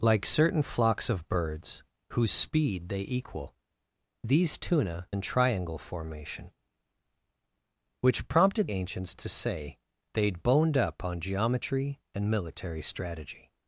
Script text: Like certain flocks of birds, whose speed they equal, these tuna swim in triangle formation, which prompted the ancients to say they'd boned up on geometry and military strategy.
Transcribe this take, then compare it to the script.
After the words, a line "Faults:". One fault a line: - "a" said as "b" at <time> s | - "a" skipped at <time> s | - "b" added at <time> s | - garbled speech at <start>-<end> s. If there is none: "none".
Like certain flocks of birds, whose speed they equal, these tuna in triangle formation, which prompted ancients to say they'd boned up on geometry and military strategy.
Faults:
- "swim" skipped at 5.1 s
- "the" skipped at 8.7 s